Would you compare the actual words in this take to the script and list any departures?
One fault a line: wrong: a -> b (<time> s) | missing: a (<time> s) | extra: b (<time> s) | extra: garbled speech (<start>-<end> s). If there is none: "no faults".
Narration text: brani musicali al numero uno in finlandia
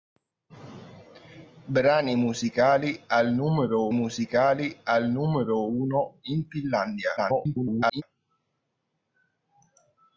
extra: musicali al numero (3.9 s)
extra: garbled speech (7.2-8.0 s)